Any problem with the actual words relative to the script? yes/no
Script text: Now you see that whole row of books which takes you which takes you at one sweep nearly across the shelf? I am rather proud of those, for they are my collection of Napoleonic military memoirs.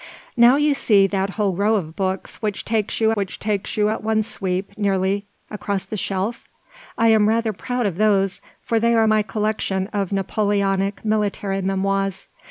no